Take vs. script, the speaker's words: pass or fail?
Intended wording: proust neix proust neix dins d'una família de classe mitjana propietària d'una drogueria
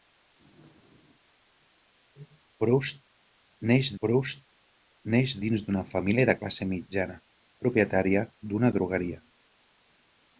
pass